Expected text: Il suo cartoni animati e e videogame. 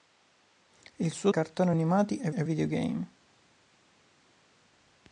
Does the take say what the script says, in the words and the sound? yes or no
yes